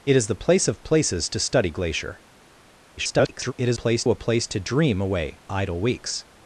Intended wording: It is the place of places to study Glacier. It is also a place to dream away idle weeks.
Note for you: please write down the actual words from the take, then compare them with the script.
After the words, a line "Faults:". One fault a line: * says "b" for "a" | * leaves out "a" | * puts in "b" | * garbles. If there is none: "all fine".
It is the place of places to study Glacier. [garbled] It is place a place to dream away idle weeks.
Faults:
* garbles
* says "place" for "also"